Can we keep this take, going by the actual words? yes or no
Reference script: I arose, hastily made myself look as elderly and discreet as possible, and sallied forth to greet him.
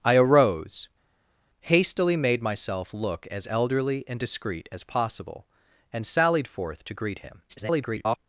no